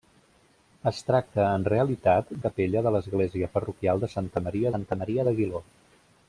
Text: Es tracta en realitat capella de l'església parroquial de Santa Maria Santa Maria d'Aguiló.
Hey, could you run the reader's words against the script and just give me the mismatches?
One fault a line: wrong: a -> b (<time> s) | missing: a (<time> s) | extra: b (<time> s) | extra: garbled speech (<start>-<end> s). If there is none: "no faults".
no faults